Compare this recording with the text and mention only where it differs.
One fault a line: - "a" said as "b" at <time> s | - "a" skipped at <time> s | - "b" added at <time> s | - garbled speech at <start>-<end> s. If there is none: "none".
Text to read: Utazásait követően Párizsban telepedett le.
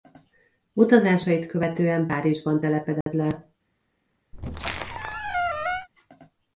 none